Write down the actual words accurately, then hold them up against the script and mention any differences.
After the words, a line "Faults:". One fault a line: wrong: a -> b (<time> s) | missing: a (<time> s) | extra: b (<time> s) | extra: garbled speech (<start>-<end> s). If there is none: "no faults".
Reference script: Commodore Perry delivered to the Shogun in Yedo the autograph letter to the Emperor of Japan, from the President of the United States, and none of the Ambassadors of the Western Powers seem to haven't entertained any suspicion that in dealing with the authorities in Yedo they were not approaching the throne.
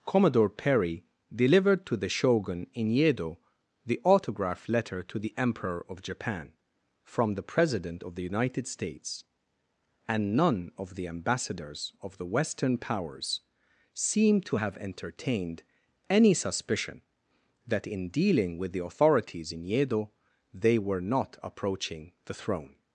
Commodore Perry delivered to the Shogun in Yedo the autograph letter to the Emperor of Japan, from the President of the United States, and none of the Ambassadors of the Western Powers seem to have entertained any suspicion that in dealing with the authorities in Yedo they were not approaching the throne.
Faults:
wrong: haven't -> have (14.5 s)